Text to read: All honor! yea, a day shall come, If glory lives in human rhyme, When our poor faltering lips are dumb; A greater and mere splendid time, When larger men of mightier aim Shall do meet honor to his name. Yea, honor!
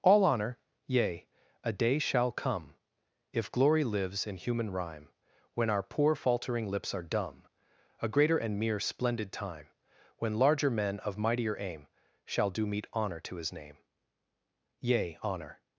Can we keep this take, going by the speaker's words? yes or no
yes